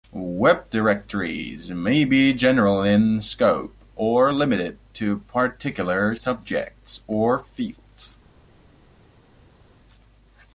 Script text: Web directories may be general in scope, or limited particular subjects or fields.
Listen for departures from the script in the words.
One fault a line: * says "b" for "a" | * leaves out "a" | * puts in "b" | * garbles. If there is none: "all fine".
* puts in "to"